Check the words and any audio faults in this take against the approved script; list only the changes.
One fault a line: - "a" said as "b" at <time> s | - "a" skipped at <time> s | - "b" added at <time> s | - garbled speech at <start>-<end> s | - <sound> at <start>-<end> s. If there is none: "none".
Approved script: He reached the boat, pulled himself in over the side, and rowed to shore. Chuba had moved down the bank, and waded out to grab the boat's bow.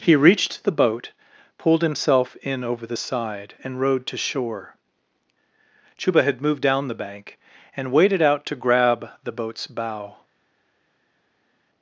none